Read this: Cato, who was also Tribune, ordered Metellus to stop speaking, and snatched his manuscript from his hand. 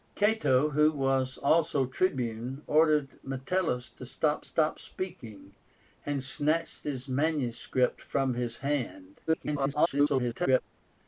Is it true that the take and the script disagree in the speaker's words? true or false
true